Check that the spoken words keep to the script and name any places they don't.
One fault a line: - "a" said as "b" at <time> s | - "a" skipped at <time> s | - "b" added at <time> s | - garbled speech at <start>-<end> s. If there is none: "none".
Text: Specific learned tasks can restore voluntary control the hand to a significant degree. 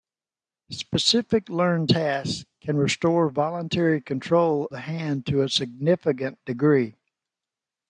none